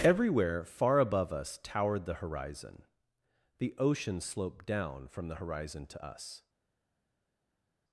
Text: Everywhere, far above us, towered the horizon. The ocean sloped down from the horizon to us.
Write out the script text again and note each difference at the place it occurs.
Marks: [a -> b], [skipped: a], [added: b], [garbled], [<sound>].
Everywhere, far above us, towered the horizon. The ocean sloped down from the horizon to us.